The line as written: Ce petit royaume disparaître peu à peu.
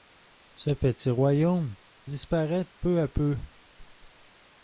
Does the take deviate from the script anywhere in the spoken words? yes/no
no